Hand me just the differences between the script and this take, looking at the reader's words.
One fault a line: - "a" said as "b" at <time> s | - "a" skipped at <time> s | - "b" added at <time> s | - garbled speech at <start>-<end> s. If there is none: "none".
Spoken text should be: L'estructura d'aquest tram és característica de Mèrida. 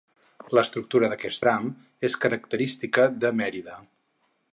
none